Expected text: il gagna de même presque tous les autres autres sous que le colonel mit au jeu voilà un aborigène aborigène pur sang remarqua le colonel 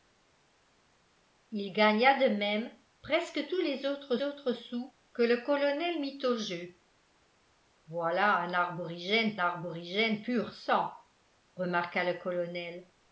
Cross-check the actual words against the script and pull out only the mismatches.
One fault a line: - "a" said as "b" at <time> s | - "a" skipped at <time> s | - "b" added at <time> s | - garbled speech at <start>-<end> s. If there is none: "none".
none